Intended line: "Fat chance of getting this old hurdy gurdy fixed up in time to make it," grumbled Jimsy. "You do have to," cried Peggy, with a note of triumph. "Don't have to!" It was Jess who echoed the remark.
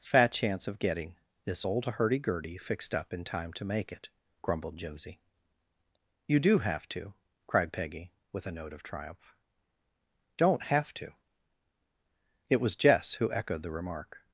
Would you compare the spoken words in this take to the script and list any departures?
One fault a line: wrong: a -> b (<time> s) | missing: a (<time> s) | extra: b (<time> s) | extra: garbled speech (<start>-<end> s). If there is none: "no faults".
no faults